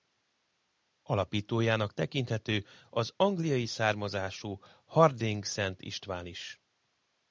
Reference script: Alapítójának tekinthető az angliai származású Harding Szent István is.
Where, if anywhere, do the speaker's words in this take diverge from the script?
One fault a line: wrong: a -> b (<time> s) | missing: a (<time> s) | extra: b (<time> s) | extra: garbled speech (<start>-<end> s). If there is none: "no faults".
no faults